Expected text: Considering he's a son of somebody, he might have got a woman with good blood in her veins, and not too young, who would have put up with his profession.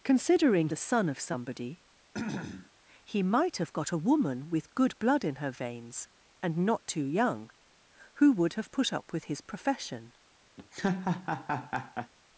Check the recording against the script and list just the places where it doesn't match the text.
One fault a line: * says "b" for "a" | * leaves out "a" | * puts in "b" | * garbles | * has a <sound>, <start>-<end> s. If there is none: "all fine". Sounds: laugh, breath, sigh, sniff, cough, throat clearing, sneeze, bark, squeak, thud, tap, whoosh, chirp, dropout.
* leaves out "he's"
* has a throat clearing, 2.1-2.7 s
* has a laugh, 10.6-12.1 s